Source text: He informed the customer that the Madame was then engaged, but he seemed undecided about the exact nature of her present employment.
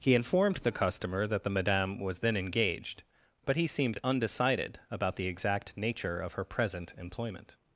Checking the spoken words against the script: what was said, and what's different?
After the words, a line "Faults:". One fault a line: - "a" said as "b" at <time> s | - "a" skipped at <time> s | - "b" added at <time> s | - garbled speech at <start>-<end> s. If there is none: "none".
He informed the customer that the Madame was then engaged, but he seemed undecided about the exact nature of her present employment.
Faults:
none